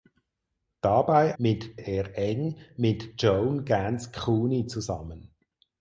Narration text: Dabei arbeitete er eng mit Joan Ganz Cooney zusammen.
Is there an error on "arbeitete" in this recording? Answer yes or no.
yes